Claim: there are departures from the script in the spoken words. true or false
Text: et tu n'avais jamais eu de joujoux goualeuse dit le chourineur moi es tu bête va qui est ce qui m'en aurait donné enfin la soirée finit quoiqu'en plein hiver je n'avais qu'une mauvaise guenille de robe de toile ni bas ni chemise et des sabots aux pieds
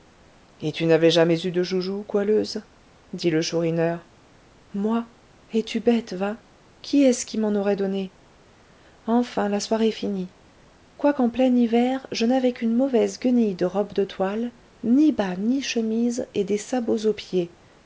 false